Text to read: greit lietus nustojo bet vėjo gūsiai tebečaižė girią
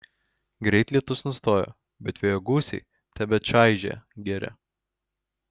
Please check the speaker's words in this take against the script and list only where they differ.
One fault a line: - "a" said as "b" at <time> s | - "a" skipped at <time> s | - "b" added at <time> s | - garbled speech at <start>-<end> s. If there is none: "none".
none